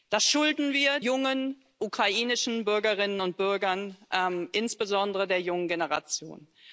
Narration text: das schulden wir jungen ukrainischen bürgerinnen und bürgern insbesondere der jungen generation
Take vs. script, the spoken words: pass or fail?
pass